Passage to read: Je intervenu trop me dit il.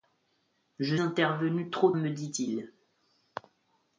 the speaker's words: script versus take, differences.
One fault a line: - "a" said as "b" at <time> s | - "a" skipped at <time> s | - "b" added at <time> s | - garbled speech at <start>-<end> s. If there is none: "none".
none